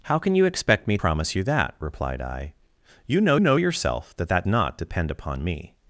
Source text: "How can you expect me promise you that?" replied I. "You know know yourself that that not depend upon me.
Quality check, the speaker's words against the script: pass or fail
pass